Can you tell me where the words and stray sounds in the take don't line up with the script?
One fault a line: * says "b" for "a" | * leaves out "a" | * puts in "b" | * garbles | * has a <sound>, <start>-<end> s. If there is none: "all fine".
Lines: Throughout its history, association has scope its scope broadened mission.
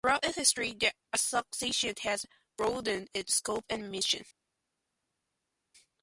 * puts in "the"
* says "broadened" for "scope"
* says "and" for "broadened"